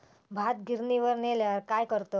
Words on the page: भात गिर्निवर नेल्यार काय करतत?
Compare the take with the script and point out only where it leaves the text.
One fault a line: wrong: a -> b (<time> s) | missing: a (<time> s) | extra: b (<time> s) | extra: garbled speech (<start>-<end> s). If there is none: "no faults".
no faults